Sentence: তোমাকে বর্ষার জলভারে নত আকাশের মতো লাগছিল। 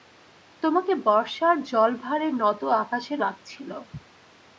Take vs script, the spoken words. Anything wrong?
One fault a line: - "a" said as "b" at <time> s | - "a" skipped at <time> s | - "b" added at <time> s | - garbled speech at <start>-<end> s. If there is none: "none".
- "মতো" skipped at 3.2 s